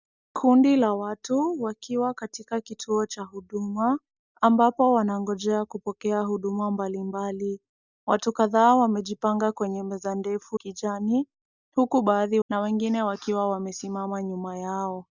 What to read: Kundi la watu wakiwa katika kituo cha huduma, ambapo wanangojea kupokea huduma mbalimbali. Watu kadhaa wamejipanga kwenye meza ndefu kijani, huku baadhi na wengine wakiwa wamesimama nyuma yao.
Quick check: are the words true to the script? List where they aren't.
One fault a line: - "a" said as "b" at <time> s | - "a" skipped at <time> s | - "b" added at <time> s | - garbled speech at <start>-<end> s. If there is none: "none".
none